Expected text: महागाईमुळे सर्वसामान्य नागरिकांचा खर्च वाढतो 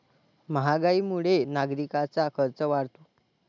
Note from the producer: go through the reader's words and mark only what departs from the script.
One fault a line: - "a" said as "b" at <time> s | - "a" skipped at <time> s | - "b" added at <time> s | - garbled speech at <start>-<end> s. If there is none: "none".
- "सर्वसामान्य" skipped at 1.4 s